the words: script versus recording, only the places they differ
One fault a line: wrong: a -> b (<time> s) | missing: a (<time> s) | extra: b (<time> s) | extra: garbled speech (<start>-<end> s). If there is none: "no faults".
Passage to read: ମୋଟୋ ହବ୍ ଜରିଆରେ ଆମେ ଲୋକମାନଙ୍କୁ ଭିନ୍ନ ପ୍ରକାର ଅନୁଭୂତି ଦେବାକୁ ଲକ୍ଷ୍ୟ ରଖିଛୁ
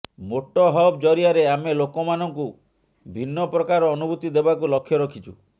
no faults